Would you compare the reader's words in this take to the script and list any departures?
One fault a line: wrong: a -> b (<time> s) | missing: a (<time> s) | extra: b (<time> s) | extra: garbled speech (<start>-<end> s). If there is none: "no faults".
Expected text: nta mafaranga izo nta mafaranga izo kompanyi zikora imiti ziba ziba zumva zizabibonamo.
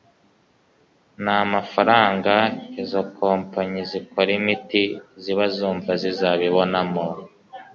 missing: nta mafaranga izo (3.0 s)
missing: ziba (5.5 s)